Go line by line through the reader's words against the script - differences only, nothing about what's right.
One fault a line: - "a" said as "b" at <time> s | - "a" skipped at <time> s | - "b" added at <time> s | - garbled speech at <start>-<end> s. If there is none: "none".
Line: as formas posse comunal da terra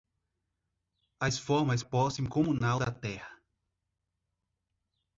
none